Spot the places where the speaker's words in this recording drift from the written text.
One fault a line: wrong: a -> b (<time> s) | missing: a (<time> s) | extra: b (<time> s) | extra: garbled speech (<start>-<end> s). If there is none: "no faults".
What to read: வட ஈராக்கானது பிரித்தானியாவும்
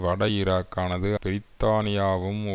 no faults